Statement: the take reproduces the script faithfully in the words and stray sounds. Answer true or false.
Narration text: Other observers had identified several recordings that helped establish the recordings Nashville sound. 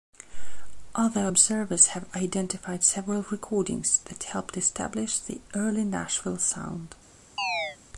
false